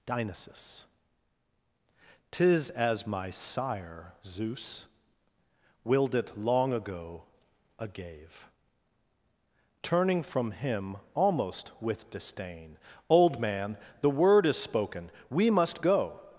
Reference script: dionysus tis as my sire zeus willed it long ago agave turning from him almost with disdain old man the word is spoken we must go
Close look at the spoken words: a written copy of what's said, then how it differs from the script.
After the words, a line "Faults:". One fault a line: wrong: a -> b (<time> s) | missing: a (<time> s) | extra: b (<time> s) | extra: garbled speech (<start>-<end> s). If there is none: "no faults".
dionysus tis as my sire zeus willed it long ago agave turning from him almost with disdain old man the word is spoken we must go
Faults:
no faults